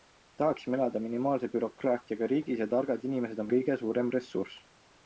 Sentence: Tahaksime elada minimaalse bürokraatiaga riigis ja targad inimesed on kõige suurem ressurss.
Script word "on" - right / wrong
right